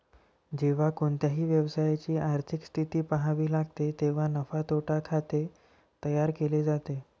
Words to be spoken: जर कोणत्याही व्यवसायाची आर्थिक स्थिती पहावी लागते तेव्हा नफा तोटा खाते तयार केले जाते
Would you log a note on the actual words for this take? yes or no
yes